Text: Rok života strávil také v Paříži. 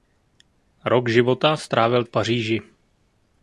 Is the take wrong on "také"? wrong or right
wrong